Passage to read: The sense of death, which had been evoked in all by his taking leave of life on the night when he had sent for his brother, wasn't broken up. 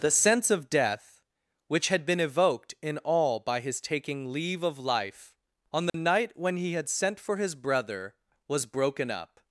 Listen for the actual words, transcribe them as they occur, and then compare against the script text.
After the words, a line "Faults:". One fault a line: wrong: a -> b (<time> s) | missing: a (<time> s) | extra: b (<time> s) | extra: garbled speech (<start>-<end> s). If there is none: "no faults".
The sense of death, which had been evoked in all by his taking leave of life on the night when he had sent for his brother, was broken up.
Faults:
wrong: wasn't -> was (8.5 s)